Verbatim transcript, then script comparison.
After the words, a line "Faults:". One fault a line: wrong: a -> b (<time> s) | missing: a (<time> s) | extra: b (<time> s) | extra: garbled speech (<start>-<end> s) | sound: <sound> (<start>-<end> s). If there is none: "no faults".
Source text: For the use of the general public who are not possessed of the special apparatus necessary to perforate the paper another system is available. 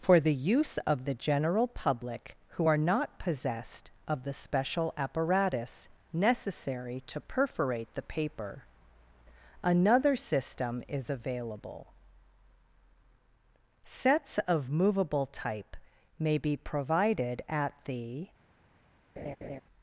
For the use of the general public who are not possessed of the special apparatus necessary to perforate the paper another system is available. Sets of movable type may be provided at the
Faults:
extra: Sets of movable type may be provided at the (13.8 s)
sound: laugh (19.2-19.6 s)